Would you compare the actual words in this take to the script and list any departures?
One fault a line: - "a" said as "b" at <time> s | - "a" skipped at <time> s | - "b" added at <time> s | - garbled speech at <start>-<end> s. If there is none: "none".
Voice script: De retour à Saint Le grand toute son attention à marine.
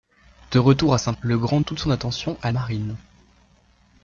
none